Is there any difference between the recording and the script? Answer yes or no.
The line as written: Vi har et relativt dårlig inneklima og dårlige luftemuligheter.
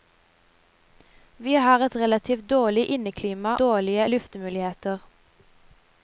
yes